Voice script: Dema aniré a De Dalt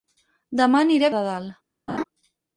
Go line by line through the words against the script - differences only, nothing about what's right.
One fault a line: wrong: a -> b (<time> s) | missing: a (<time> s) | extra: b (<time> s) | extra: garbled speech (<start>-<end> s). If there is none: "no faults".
no faults